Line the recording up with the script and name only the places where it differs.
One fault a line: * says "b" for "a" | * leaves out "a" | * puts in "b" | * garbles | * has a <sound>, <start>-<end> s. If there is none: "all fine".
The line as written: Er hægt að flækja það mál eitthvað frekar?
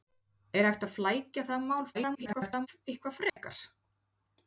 * garbles
* has a dropout, 3.3-3.4 s